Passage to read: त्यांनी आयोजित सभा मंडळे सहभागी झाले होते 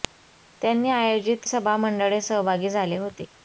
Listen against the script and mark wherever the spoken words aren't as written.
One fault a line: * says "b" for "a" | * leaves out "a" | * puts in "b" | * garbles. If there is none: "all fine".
all fine